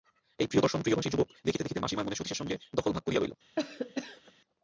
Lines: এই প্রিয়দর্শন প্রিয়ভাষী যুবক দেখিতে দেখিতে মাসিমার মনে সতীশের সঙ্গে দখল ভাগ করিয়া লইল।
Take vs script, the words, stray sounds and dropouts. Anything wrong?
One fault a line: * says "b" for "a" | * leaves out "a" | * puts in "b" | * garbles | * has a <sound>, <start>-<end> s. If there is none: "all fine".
* has a cough, 3.6-4.3 s